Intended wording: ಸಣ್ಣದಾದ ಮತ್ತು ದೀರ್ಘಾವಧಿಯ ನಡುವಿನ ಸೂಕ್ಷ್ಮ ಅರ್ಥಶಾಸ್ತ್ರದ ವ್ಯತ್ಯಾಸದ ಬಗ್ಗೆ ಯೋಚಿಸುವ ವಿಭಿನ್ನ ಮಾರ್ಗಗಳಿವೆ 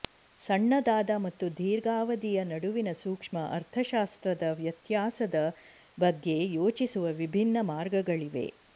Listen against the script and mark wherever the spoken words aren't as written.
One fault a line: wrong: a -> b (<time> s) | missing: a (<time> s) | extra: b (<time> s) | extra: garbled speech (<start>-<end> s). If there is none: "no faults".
no faults